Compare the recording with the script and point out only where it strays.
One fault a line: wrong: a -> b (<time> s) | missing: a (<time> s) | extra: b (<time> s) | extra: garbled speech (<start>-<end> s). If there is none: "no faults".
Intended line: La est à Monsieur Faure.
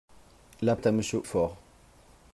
no faults